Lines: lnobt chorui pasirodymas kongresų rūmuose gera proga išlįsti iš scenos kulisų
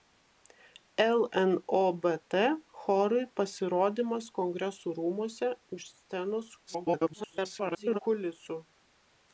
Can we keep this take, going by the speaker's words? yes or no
no